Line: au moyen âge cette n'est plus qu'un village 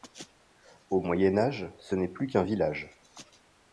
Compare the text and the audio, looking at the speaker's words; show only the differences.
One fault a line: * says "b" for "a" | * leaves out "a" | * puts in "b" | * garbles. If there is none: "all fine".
* says "ce" for "cette"